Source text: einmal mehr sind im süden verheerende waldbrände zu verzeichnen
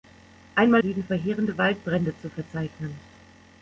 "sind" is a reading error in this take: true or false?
true